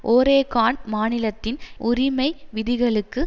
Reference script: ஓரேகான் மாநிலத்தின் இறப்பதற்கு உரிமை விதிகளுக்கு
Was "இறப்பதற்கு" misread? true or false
true